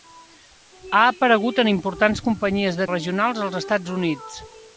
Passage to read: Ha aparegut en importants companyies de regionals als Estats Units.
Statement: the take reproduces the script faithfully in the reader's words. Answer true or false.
true